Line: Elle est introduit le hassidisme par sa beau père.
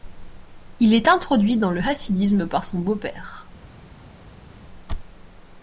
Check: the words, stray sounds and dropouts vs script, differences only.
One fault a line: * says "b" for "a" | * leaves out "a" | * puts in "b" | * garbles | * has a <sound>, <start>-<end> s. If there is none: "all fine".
* says "Il" for "Elle"
* puts in "dans"
* says "son" for "sa"